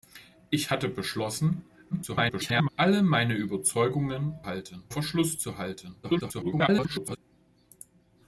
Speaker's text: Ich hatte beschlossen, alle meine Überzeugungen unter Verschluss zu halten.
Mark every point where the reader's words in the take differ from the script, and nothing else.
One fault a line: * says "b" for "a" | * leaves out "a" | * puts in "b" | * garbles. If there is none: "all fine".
* garbles
* says "halten" for "unter"
* garbles